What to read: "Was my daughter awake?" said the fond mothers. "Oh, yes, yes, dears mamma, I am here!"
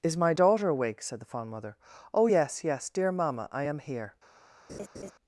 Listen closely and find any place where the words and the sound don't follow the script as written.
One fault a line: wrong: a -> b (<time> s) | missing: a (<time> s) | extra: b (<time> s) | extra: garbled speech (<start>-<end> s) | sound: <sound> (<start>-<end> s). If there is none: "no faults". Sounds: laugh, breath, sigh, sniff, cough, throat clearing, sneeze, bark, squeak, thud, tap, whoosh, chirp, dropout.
wrong: Was -> Is (0.0 s)
wrong: mothers -> mother (1.5 s)
wrong: dears -> dear (2.9 s)
sound: laugh (4.7-5.1 s)